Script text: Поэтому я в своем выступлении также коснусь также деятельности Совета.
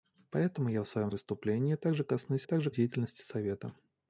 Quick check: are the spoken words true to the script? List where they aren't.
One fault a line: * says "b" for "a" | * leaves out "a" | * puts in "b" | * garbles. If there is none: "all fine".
all fine